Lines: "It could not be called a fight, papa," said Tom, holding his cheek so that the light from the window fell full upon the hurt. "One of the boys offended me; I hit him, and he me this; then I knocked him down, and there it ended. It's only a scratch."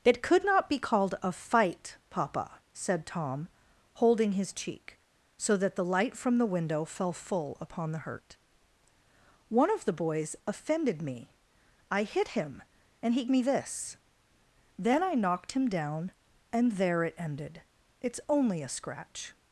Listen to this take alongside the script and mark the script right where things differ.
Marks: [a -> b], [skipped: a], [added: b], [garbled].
"It could not be called a fight, papa," said Tom, holding his cheek so that the light from the window fell full upon the hurt. "One of the boys offended me; I hit him, and he me this; then I knocked him down, and there it ended. It's only a scratch."